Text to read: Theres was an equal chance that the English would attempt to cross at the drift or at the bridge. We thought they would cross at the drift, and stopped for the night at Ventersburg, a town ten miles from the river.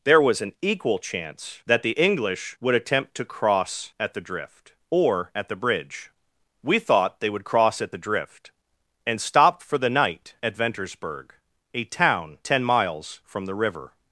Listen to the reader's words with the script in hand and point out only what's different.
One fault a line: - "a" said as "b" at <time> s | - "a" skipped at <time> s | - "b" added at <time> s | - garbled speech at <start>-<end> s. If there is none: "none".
- "Theres" said as "There" at 0.0 s